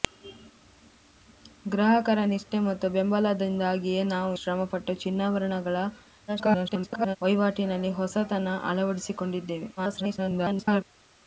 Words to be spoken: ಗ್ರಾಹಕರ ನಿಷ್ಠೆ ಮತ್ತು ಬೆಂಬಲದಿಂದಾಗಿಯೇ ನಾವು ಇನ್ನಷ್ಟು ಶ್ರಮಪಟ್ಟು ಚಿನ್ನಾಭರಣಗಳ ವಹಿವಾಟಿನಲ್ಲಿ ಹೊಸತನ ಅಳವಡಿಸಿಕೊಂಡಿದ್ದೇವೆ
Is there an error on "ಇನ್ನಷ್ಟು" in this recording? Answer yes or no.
yes